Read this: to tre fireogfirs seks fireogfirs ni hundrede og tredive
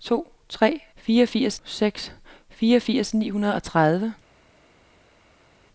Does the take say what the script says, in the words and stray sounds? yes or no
yes